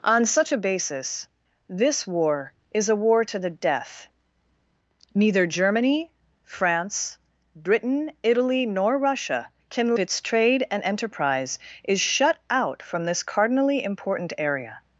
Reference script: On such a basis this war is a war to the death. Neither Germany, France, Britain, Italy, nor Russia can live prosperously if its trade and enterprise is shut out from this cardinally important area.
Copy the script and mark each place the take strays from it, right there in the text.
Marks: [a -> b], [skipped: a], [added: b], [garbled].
On such a basis this war is a war to the death. Neither Germany, France, Britain, Italy, nor Russia can [skipped: live prosperously if] its trade and enterprise is shut out from this cardinally important area.